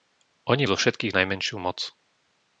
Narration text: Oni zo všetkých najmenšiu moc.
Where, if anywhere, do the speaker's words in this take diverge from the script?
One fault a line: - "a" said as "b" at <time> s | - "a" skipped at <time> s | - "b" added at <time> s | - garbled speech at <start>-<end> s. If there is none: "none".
none